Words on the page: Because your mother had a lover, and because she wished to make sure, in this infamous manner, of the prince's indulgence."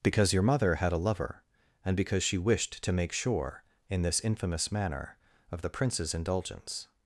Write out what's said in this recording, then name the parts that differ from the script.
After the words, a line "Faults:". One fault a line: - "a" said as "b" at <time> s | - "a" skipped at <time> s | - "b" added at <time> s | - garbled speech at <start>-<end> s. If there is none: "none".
Because your mother had a lover, and because she wished to make sure, in this infamous manner, of the prince's indulgence."
Faults:
none